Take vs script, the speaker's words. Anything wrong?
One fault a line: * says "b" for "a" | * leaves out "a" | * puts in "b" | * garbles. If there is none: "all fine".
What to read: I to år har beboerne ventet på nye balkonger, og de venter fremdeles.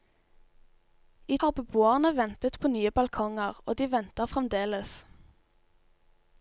* leaves out "to år"